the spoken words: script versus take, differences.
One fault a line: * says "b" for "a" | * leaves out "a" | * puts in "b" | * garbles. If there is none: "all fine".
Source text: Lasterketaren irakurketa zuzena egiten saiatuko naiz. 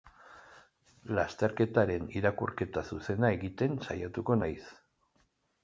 all fine